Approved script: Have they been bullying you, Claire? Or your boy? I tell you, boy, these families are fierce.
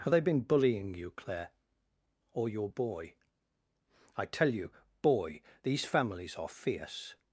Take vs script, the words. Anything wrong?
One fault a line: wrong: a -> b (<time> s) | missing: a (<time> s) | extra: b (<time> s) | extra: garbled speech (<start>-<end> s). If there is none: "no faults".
no faults